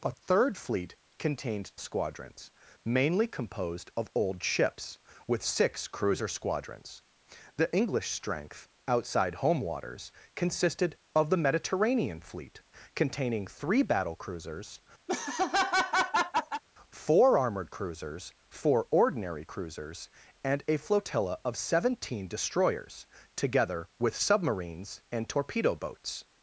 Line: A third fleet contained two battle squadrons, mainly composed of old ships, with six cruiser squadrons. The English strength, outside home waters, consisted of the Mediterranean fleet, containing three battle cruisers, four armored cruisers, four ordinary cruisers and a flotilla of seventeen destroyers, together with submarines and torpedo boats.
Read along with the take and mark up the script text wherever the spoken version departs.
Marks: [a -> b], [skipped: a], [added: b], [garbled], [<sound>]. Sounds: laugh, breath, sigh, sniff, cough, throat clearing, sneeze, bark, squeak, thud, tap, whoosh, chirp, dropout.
A third fleet contained [skipped: two battle] squadrons, mainly composed of old ships, with six cruiser squadrons. The English strength, outside home waters, consisted of the Mediterranean fleet, containing three battle cruisers, [laugh] four armored cruisers, four ordinary cruisers and a flotilla of seventeen destroyers, together with submarines and torpedo boats.